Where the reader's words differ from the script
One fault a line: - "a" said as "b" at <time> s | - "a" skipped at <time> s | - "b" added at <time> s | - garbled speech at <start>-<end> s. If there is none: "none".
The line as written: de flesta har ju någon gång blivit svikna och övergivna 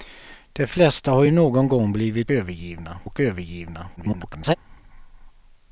- "svikna" said as "övergivna" at 2.3 s
- garbled speech at 4.0-4.5 s